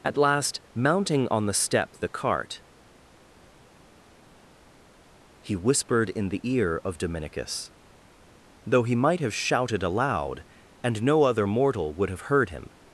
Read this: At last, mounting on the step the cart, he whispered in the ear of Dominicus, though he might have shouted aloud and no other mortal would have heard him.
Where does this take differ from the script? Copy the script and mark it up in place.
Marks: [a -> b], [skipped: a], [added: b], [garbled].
At last, mounting on the step the cart, he whispered in the ear of Dominicus, though he might have shouted aloud and no other mortal would have heard him.